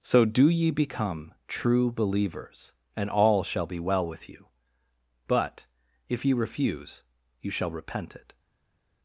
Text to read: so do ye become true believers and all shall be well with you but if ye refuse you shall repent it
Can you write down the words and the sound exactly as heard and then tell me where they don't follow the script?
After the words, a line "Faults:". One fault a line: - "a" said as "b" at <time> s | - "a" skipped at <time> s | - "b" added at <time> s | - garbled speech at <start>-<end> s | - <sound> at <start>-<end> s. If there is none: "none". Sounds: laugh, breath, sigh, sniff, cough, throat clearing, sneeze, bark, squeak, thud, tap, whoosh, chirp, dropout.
so do ye become true believers and all shall be well with you but if ye refuse you shall repent it
Faults:
none